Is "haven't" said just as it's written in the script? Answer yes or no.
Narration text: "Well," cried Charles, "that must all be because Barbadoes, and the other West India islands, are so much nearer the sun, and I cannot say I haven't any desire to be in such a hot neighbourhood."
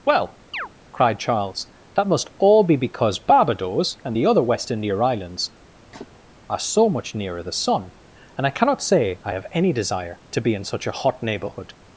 no